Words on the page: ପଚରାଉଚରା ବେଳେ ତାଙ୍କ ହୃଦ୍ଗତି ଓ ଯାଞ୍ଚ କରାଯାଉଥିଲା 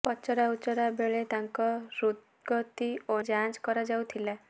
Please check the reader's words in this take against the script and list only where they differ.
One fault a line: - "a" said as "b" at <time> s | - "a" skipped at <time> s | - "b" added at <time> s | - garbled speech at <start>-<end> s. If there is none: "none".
none